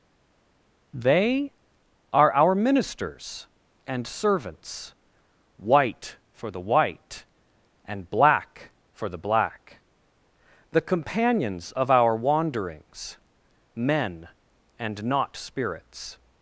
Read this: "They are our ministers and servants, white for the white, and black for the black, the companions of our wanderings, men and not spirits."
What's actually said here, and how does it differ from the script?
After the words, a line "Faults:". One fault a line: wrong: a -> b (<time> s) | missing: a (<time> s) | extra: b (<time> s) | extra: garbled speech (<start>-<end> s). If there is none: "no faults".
"They are our ministers and servants, white for the white, and black for the black, the companions of our wanderings, men and not spirits."
Faults:
no faults